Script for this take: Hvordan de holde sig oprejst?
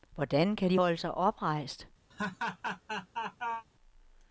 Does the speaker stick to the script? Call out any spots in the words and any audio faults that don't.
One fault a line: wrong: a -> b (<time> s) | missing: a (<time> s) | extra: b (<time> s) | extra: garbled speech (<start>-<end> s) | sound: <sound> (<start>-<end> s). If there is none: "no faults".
extra: kan (0.6 s)
sound: laugh (2.1-3.6 s)